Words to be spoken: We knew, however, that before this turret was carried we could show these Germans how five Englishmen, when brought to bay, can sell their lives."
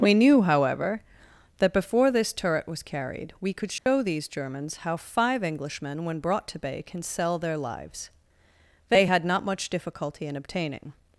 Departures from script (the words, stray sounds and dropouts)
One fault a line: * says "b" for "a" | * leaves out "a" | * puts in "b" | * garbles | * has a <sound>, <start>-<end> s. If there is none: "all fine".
* has a dropout, 3.8-3.9 s
* puts in "They had not much difficulty in obtaining"